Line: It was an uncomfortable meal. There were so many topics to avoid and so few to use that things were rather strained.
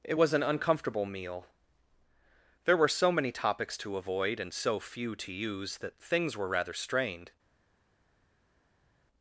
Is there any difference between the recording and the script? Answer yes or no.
no